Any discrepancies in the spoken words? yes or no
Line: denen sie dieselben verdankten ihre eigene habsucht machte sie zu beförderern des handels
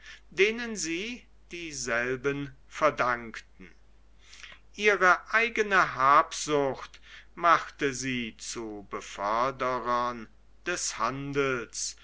no